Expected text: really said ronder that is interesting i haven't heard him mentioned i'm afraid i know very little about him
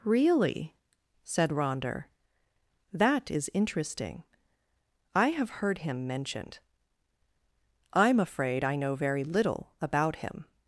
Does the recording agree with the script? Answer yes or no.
no